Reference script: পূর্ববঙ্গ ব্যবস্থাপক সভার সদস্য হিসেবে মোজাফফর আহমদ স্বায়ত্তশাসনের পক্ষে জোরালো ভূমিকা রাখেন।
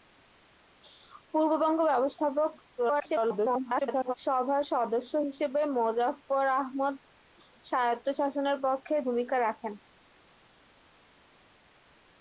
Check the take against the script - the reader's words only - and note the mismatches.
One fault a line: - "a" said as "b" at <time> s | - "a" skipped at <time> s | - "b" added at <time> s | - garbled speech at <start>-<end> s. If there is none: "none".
- garbled speech at 2.8-4.1 s
- "জোরালো" skipped at 9.0 s